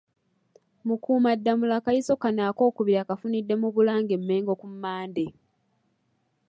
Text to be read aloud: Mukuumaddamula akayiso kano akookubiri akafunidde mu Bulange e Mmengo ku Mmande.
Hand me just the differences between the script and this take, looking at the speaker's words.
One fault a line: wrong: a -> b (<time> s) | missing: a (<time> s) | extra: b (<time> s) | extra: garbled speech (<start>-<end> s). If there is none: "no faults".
no faults